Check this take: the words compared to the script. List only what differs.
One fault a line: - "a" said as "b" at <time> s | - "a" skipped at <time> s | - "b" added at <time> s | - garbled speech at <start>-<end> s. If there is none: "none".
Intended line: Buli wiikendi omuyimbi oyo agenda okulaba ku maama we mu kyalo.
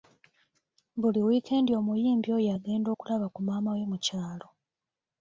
none